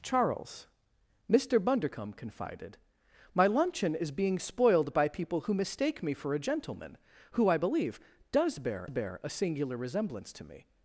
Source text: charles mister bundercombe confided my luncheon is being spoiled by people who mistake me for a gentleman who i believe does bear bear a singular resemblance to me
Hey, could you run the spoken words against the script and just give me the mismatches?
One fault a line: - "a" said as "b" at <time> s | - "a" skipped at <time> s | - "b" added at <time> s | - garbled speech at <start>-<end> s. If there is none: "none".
none